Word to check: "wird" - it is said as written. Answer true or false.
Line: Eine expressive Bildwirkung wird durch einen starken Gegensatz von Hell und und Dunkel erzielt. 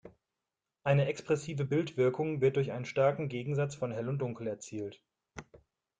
true